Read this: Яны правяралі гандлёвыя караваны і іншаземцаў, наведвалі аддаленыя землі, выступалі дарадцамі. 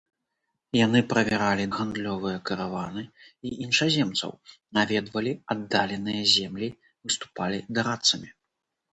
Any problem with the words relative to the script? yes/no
no